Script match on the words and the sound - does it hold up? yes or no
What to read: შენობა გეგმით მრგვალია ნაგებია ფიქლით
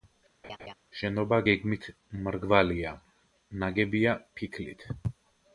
no